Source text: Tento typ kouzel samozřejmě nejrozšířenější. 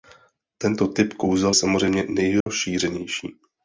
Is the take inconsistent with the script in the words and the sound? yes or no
yes